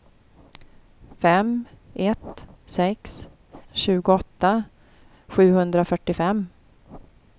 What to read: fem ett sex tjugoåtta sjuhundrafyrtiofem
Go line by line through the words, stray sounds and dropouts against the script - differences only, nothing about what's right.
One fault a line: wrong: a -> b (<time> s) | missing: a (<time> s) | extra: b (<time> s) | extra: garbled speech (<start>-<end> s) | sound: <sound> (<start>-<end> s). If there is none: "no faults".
no faults